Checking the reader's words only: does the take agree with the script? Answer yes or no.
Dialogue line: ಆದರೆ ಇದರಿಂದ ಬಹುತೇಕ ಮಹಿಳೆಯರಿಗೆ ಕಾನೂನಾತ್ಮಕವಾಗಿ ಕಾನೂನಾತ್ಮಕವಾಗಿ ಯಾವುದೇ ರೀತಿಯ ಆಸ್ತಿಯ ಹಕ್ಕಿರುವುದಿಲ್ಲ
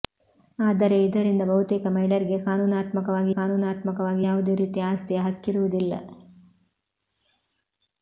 yes